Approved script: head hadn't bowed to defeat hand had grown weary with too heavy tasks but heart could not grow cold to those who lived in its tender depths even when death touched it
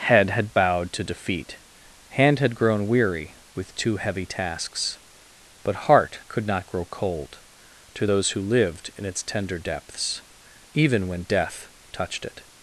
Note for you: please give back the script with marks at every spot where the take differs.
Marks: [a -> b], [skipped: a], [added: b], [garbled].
head [hadn't -> had] bowed to defeat hand had grown weary with too heavy tasks but heart could not grow cold to those who lived in its tender depths even when death touched it